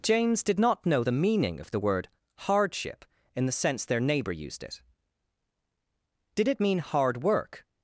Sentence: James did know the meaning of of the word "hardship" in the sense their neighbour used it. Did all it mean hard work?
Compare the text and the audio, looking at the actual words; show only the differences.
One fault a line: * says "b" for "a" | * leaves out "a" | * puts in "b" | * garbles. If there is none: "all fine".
* puts in "not"
* leaves out "of"
* leaves out "all"